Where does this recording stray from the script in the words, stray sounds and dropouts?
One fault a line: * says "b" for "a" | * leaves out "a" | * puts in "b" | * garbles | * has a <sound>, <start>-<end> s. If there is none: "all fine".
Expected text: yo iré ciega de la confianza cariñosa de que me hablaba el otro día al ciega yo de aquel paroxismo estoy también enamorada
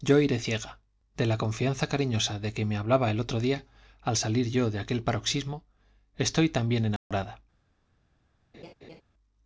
* says "salir" for "ciega"
* has a dropout, 7.0-7.1 s
* has a laugh, 8.5-9.0 s